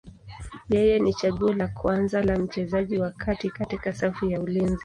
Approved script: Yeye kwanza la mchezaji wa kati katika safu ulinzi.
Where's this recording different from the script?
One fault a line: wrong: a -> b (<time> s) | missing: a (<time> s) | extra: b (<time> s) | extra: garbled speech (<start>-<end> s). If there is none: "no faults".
extra: ni chaguo la (1.0 s)
extra: ya (4.2 s)